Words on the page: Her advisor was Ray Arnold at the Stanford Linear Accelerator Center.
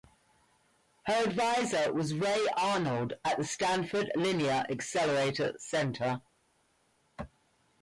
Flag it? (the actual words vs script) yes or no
no